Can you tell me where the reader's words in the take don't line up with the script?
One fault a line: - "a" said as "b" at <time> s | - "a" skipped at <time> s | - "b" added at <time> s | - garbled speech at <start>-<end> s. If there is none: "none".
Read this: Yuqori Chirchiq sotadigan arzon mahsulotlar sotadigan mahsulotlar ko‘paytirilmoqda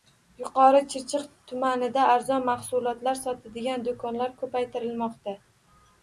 - "sotadigan" said as "tumanida" at 1.5 s
- "mahsulotlar" said as "do‘konlar" at 3.9 s